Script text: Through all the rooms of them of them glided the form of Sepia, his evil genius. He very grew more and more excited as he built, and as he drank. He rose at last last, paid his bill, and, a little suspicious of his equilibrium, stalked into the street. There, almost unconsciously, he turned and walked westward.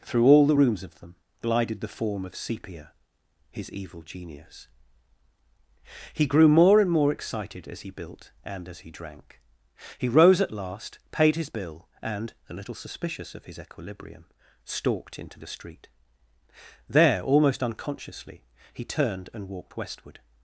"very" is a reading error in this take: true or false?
true